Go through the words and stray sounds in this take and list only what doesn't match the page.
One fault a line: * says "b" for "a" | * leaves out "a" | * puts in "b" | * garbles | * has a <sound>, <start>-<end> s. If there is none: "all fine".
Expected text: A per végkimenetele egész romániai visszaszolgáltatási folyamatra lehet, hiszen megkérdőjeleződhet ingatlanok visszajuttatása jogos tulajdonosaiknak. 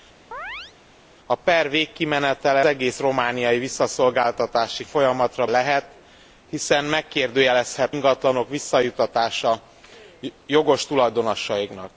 * has a chirp, 0.3-0.7 s